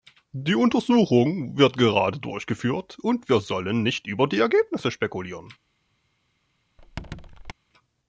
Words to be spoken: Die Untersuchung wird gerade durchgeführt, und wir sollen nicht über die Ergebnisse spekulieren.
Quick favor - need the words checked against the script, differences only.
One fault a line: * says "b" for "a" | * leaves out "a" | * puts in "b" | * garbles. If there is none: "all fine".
all fine